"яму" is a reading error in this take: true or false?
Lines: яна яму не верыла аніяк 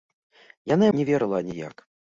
true